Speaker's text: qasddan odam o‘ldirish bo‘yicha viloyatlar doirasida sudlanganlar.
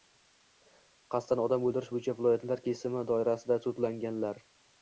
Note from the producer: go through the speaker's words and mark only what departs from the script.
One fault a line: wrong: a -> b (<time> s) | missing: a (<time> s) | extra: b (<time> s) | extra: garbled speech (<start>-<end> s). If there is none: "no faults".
extra: kesimi (2.7 s)